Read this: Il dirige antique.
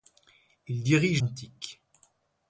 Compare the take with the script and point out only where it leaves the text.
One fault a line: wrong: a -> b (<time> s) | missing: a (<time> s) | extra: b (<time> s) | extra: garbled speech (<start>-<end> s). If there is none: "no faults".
no faults